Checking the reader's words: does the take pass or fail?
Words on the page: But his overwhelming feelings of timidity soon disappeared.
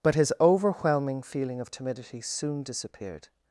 fail